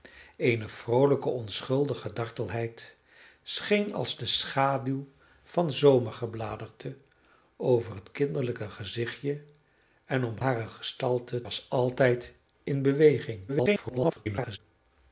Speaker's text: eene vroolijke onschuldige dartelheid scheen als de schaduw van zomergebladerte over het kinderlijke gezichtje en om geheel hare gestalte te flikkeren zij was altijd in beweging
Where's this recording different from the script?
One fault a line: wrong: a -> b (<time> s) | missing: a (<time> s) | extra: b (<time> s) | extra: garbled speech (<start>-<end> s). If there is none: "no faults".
missing: geheel (10.4 s)
missing: te flikkeren zij (11.4 s)
extra: garbled speech (13.5-14.6 s)